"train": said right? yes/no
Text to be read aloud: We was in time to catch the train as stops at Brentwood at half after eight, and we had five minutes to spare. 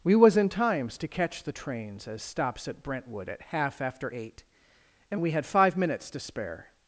no